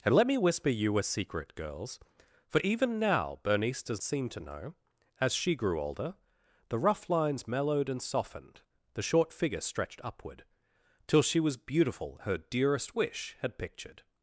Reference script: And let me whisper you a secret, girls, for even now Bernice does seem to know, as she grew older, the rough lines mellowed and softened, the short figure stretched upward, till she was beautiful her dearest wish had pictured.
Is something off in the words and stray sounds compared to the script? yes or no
no